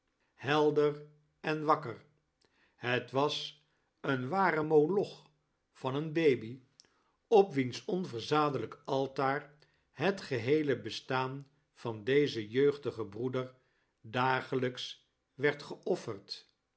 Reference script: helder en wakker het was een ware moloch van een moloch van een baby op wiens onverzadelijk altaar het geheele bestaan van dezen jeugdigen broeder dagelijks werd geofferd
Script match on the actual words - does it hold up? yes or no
no